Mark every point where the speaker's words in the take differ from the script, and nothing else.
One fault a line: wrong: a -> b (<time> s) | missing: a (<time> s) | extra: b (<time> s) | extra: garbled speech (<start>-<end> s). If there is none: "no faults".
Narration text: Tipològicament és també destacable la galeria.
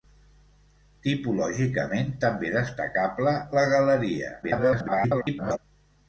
missing: és (2.1 s)
extra: garbled speech (4.4-5.6 s)